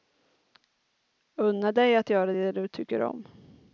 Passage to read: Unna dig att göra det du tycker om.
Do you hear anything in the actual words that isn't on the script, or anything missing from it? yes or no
no